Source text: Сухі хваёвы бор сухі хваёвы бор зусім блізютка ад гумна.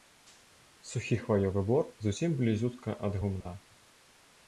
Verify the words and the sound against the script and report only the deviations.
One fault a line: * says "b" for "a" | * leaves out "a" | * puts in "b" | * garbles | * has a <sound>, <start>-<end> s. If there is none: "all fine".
* leaves out "сухі хваёвы бор"
* has a dropout, 3.4-3.5 s